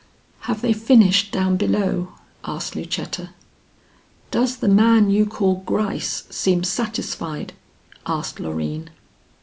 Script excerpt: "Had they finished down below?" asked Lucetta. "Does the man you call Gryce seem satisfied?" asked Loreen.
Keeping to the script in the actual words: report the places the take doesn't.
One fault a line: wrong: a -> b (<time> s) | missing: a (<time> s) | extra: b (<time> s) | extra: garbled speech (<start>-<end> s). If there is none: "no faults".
wrong: Had -> Have (0.5 s)